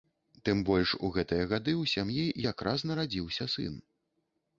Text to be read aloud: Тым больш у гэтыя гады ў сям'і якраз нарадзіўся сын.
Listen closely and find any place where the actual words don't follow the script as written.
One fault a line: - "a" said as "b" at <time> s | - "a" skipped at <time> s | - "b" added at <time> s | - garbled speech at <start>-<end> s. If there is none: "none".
none